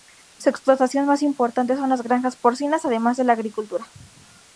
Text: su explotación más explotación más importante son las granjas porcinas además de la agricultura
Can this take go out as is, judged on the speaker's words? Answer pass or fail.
fail